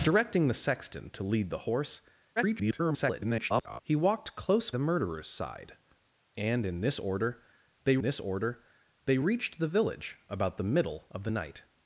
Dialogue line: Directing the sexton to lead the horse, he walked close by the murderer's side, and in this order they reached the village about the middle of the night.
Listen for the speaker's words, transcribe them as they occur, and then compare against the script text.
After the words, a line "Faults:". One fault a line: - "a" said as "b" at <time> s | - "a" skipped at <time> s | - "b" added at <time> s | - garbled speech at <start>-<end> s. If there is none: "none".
Directing the sexton to lead the horse, [garbled] he walked close the murderer's side, and in this order they this order they reached the village about the middle of the night.
Faults:
- garbled speech at 2.4-3.8 s
- "by" skipped at 4.7 s
- "this order they" added at 8.0 s